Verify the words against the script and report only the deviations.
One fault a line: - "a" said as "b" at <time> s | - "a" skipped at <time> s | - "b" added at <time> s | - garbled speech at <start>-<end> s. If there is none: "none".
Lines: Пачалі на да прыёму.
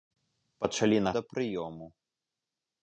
none